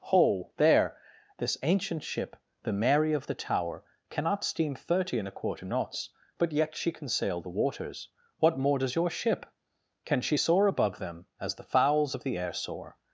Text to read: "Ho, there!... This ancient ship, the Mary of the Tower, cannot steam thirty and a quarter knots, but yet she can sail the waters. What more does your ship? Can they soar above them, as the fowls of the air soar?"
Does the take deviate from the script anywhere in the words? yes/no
yes